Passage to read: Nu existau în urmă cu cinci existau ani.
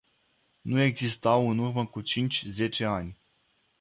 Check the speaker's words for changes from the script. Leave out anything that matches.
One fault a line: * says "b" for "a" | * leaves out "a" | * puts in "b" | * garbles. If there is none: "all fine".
* says "zece" for "existau"